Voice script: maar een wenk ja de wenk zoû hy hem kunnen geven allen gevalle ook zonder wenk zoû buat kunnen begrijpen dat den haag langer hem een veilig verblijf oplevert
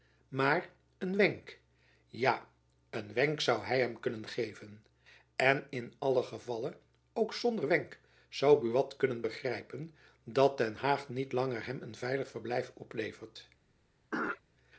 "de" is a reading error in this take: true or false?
true